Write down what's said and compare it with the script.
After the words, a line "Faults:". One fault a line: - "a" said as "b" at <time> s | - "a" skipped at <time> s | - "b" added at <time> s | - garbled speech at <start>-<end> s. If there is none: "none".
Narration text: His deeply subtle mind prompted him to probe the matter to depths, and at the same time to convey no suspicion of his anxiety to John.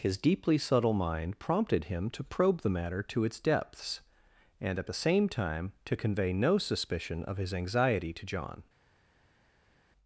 His deeply subtle mind prompted him to probe the matter to its depths, and at the same time to convey no suspicion of his anxiety to John.
Faults:
- "its" added at 3.2 s